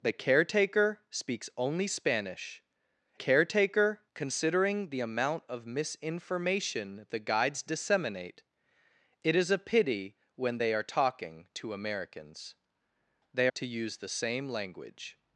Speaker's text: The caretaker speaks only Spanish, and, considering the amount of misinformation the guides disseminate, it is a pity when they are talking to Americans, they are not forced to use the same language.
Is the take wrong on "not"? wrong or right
wrong